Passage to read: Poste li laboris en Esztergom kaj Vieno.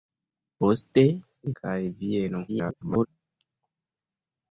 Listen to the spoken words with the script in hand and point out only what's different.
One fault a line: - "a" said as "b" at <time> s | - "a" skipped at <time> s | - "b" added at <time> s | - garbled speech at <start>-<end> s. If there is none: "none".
- "laboris en Esztergom" skipped at 1.5 s
- garbled speech at 2.5-3.1 s